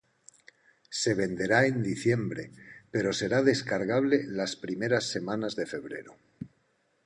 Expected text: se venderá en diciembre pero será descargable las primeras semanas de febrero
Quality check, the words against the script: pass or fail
pass